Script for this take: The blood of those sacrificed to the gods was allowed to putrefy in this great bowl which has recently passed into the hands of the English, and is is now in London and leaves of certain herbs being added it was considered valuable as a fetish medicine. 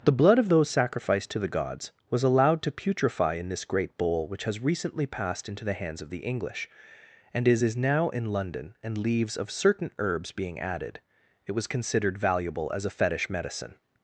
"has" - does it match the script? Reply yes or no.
yes